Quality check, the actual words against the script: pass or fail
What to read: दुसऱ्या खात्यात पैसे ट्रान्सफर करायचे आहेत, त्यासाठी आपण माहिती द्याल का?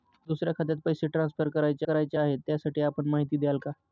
fail